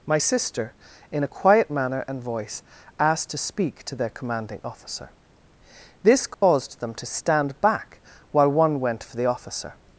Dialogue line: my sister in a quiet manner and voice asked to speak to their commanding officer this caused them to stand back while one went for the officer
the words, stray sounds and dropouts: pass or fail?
fail